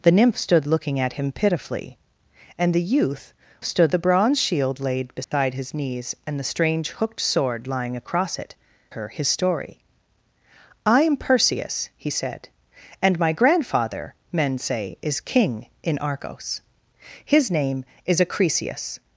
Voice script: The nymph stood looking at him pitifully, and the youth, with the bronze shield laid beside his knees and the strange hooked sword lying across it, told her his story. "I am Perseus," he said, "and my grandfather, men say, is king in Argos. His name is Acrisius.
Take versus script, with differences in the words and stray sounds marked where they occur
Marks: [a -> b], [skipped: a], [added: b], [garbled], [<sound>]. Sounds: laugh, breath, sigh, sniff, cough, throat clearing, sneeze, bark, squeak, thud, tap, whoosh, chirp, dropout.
The nymph stood looking at him pitifully, and the youth, [with -> stood] the bronze shield laid beside [dropout] his knees and the strange hooked sword lying across it, [skipped: told] her his story. "I am Perseus," he said, "and my grandfather, men say, is king in Argos. His name is Acrisius.